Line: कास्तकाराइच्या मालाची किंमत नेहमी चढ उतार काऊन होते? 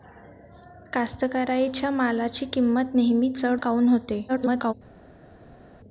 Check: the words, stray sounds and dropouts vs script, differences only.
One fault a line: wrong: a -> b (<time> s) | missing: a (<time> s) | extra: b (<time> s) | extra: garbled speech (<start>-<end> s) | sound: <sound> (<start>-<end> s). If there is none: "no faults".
missing: उतार (3.6 s)
extra: garbled speech (4.3-4.7 s)